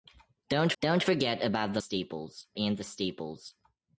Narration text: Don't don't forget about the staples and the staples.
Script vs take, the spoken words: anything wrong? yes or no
no